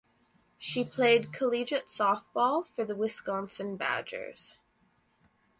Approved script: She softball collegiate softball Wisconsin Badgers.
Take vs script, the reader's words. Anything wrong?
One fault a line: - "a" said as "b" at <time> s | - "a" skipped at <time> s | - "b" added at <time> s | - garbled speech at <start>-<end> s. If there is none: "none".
- "softball" said as "played" at 0.8 s
- "for the" added at 2.6 s